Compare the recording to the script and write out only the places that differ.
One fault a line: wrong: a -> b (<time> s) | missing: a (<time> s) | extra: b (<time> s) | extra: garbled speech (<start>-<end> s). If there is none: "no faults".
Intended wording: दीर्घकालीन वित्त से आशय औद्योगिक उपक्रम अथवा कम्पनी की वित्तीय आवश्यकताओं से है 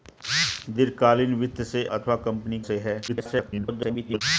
missing: आशय औद्योगिक उपक्रम (1.8 s)
missing: की वित्तीय आवश्यकताओं (2.6 s)
extra: garbled speech (3.1-4.2 s)